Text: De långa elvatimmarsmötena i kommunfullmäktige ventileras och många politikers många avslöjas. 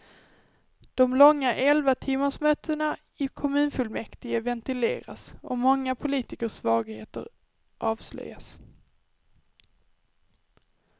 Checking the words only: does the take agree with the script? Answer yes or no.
no